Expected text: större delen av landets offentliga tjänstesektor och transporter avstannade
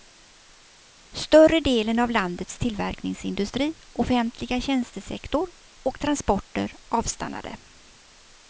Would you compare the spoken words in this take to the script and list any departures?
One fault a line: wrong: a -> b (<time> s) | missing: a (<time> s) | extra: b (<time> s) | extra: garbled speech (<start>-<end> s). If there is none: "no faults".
extra: tillverkningsindustri (2.6 s)